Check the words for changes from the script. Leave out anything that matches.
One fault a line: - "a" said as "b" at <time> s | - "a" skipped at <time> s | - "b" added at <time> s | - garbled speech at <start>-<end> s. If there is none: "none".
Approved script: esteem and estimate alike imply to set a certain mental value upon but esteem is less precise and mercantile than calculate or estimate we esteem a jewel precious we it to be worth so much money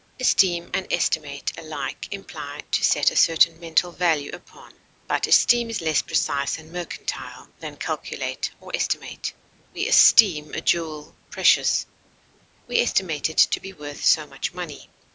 - "estimate" added at 12.8 s